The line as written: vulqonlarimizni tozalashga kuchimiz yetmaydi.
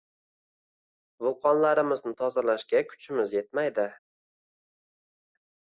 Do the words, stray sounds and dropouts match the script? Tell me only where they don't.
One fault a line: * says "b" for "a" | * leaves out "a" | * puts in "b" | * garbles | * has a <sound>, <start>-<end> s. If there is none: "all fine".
all fine